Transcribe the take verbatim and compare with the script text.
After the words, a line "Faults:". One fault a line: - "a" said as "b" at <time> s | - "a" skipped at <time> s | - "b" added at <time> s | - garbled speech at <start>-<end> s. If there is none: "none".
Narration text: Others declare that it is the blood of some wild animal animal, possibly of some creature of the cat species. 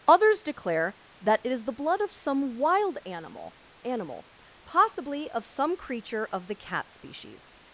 Others declare that it is the blood of some wild animal animal, possibly of some creature of the cat species.
Faults:
none